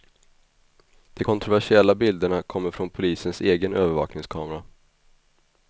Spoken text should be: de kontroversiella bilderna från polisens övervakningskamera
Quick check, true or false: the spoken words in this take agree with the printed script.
false